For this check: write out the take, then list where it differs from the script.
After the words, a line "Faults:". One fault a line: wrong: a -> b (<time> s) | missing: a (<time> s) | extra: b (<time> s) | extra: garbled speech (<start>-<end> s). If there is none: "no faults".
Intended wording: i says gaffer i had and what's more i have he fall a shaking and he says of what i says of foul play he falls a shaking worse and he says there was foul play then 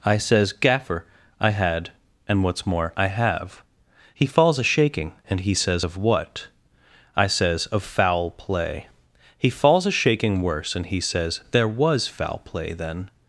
i says gaffer i had and what's more i have he falls a shaking and he says of what i says of foul play he falls a shaking worse and he says there was foul play then
Faults:
wrong: fall -> falls (4.3 s)